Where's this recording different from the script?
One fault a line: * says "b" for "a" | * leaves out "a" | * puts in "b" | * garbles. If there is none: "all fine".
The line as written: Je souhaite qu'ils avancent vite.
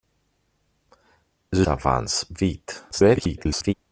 * leaves out "souhaite qu'ils"
* garbles